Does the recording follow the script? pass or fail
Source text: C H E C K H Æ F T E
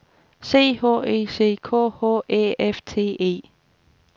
pass